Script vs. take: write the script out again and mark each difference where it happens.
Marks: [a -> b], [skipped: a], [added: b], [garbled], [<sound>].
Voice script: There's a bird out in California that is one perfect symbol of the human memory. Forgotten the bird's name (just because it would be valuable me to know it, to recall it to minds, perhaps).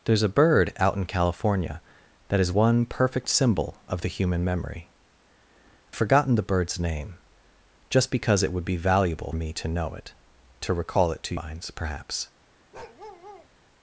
There's a bird out in California that is one perfect symbol of the human memory. Forgotten the bird's name (just because it would be valuable me to know it, to recall it to minds, perhaps). [bark]